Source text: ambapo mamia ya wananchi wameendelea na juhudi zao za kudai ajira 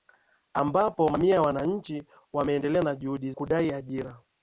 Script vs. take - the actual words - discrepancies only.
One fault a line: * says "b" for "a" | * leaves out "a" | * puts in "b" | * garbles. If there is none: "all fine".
* leaves out "zao za"